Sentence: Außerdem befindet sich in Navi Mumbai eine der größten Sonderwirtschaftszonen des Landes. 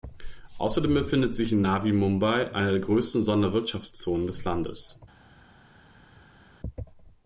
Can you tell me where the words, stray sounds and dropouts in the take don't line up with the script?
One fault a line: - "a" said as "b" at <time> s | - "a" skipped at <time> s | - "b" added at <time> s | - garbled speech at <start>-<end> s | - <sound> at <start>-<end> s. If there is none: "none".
none